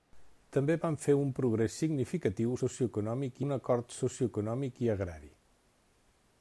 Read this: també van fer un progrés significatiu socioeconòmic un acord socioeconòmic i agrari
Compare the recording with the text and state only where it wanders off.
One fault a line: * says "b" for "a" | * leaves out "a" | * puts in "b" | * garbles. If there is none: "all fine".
all fine